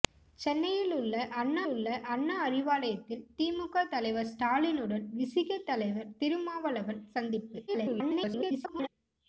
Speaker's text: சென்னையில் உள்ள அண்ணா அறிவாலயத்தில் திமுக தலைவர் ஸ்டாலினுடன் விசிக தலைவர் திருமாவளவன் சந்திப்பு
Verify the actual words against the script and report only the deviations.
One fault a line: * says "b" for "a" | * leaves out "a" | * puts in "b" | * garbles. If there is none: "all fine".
* puts in "உள்ள அண்ணா"
* garbles